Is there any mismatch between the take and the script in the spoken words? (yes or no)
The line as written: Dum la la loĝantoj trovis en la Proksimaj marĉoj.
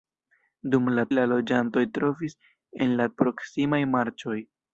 no